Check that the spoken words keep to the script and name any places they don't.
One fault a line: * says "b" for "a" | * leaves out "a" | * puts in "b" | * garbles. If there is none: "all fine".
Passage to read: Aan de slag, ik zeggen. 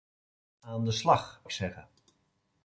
all fine